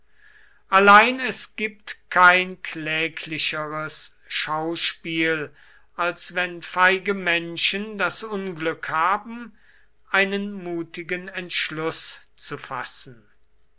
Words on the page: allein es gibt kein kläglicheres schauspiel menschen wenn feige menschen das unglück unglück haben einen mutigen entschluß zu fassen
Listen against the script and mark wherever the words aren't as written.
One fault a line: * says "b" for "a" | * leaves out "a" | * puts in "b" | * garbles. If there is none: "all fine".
* says "als" for "menschen"
* leaves out "unglück"